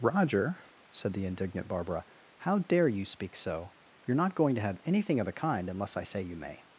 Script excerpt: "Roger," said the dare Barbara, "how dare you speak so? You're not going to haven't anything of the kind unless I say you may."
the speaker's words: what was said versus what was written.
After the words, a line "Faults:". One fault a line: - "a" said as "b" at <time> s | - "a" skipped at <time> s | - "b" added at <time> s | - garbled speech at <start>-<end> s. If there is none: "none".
"Roger," said the indignant Barbara, "how dare you speak so? You're not going to have anything of the kind unless I say you may."
Faults:
- "dare" said as "indignant" at 1.2 s
- "haven't" said as "have" at 4.6 s